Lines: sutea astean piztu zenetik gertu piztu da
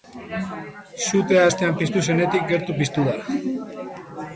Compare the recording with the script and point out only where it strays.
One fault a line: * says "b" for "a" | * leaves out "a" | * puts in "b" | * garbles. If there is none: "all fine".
all fine